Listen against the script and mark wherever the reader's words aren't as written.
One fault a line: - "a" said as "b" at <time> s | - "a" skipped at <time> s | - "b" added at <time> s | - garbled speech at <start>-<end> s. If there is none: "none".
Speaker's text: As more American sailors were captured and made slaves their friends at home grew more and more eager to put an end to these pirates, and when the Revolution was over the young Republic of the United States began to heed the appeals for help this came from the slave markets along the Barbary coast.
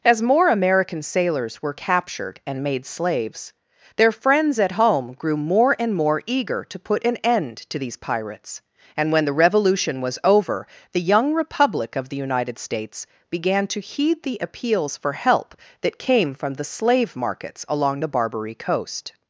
- "this" said as "that" at 15.8 s